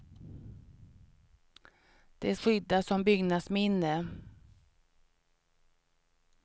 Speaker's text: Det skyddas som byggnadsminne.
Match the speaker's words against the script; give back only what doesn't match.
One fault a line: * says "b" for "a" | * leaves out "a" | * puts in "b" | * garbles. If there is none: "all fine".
all fine